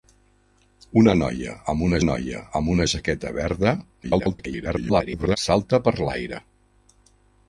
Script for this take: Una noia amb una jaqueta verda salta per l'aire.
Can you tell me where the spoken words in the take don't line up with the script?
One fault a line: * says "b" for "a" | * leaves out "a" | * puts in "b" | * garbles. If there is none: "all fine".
* puts in "noia amb una"
* garbles